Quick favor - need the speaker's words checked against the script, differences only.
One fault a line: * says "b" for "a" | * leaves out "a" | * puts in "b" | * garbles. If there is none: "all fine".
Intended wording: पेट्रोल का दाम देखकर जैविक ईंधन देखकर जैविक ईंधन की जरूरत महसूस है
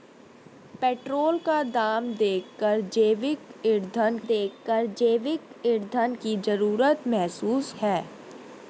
all fine